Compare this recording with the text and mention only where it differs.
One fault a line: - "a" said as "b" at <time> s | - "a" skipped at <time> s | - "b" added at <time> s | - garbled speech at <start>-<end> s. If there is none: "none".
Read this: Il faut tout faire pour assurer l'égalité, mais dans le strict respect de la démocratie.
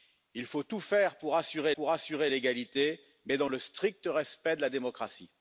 - "pour assurer" added at 1.7 s